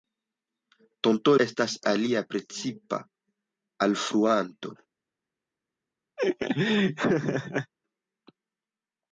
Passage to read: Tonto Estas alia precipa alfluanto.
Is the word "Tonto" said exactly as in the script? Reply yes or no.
yes